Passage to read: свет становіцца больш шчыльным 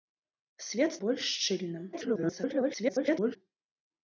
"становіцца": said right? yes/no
no